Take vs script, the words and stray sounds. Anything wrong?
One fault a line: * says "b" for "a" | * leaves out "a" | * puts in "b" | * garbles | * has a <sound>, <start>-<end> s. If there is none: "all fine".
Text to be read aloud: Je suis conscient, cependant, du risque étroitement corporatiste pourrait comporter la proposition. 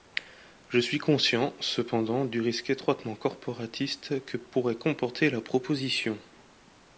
* puts in "que"